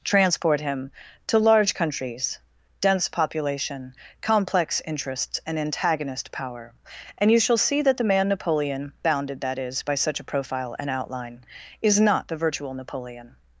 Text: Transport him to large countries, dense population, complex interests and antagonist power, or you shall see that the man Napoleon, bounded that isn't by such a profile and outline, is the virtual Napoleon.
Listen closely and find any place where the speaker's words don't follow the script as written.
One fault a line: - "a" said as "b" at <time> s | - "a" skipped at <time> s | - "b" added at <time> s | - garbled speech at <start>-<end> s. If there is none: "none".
- "or" said as "and" at 7.2 s
- "isn't" said as "is" at 9.6 s
- "not" added at 12.0 s